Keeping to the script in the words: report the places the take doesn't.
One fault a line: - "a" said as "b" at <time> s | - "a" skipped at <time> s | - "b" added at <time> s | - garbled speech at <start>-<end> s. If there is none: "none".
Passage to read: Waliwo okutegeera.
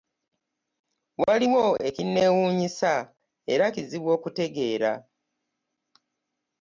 - "ekinneewuunyisa era kizibu" added at 1.9 s